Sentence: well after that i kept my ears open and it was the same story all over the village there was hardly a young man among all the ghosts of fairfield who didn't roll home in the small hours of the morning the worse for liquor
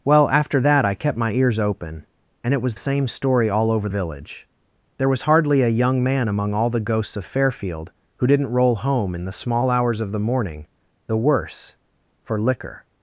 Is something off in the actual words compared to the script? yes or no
yes